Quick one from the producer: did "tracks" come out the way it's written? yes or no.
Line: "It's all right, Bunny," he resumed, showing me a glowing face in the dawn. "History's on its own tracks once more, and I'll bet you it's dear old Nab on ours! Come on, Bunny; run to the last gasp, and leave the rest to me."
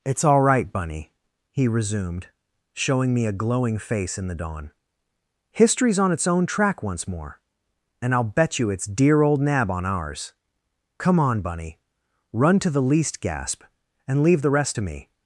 no